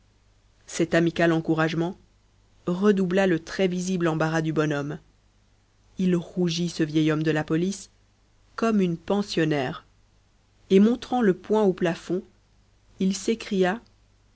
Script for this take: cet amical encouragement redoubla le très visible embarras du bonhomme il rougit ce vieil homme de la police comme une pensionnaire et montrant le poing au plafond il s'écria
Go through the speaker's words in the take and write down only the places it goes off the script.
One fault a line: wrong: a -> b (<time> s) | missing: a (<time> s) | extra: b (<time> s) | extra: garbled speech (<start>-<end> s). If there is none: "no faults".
no faults